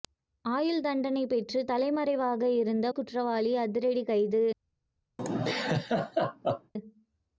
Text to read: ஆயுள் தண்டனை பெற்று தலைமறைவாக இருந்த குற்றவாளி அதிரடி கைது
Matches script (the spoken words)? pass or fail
pass